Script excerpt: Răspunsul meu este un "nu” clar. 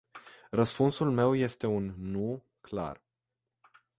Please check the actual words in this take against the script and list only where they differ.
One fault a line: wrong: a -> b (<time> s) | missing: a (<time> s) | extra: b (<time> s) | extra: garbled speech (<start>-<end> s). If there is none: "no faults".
no faults